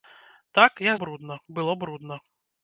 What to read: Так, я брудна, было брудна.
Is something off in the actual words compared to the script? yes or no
no